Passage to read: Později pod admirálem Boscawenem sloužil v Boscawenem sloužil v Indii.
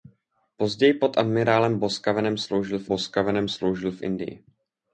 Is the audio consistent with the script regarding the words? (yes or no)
yes